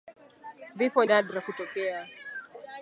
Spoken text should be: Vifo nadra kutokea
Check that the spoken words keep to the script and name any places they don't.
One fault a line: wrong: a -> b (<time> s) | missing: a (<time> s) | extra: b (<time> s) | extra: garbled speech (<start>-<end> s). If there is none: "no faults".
no faults